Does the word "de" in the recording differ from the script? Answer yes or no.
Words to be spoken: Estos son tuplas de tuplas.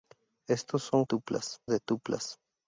no